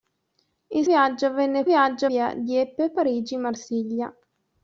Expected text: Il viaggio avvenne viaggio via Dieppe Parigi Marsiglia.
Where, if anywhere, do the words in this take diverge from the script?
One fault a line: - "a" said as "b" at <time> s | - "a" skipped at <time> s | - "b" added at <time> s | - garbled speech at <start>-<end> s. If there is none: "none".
none